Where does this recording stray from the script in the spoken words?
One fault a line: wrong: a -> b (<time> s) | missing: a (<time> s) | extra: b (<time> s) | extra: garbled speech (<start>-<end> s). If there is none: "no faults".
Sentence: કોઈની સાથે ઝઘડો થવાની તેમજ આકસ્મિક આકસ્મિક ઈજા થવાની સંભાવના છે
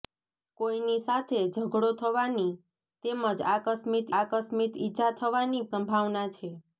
no faults